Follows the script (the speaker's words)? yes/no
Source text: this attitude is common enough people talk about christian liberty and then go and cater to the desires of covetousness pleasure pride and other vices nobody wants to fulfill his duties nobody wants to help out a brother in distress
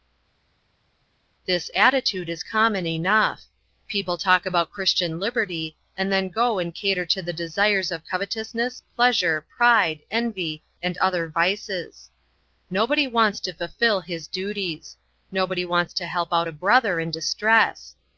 no